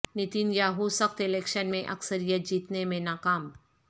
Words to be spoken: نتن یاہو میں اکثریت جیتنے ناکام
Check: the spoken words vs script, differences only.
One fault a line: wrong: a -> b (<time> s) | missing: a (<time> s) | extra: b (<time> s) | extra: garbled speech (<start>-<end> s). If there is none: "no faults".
extra: سخت الیکشن (0.9 s)
extra: میں (2.9 s)